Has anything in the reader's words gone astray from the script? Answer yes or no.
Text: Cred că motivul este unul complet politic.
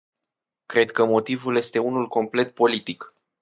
no